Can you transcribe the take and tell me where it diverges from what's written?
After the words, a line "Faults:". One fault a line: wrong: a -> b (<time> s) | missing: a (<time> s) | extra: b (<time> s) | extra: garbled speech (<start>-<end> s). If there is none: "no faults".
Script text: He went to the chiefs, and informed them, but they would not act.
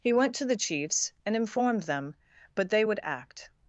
He went to the chiefs, and informed them, but they would act.
Faults:
missing: not (3.0 s)